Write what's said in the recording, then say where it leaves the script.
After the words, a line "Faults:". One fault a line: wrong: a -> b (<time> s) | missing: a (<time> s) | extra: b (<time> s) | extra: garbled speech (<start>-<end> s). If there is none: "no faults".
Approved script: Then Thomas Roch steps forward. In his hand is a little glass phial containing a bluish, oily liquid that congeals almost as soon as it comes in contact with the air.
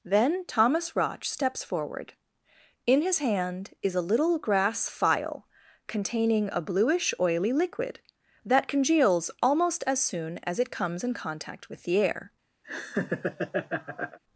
Then Thomas Roch steps forward. In his hand is a little grass phial containing a bluish, oily liquid that congeals almost as soon as it comes in contact with the air.
Faults:
wrong: glass -> grass (4.4 s)